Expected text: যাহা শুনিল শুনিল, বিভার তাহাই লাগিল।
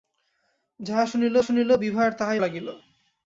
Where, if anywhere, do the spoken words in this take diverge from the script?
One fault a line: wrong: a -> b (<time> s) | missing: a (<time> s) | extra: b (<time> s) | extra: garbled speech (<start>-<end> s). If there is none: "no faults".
no faults